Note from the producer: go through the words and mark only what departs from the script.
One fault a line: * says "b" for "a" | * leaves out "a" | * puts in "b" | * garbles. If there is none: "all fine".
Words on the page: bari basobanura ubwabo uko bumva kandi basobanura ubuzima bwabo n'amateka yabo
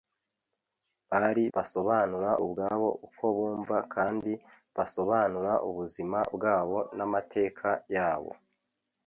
all fine